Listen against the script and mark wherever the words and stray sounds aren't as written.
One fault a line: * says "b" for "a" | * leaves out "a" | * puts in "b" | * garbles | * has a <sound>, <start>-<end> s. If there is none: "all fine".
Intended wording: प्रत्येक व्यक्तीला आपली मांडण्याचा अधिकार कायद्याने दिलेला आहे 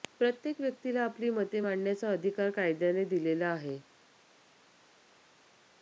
* puts in "मते"